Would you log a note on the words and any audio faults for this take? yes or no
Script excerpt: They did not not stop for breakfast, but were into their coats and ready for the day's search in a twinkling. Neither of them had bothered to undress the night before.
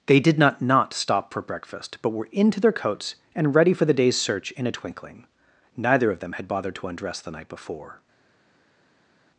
no